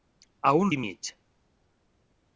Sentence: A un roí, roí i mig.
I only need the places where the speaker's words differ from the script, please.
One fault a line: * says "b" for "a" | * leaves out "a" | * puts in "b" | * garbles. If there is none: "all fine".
* leaves out "roí roí"